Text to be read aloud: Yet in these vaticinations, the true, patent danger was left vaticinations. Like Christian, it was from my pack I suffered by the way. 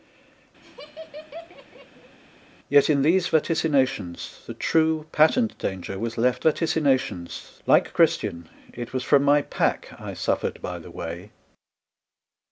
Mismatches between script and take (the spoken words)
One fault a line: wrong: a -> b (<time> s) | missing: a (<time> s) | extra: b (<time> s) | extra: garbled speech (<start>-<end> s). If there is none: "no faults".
no faults